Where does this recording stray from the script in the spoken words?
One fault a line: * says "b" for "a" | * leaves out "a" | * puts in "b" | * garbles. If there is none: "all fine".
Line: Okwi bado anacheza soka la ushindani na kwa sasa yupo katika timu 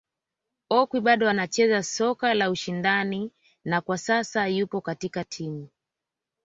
all fine